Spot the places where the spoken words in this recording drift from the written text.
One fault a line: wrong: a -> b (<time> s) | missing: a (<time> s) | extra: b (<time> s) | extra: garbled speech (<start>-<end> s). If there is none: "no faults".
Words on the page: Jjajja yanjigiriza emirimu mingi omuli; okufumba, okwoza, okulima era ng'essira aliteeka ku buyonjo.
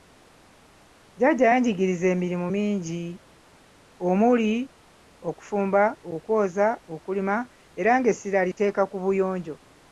no faults